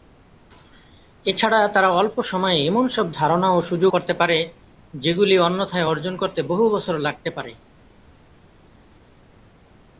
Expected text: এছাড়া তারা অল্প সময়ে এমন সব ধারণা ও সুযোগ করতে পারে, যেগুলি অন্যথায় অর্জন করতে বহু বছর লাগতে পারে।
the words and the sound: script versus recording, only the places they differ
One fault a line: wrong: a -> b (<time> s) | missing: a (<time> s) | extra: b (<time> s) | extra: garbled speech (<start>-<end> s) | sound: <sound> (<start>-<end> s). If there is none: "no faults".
no faults